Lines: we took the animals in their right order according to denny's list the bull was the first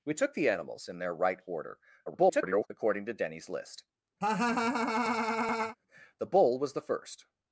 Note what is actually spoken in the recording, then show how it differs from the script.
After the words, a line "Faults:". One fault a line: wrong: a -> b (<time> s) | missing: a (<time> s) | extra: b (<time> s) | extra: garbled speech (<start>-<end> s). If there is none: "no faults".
we took the animals in their right order [garbled] according to denny's list the bull was the first
Faults:
extra: garbled speech (2.1-2.7 s)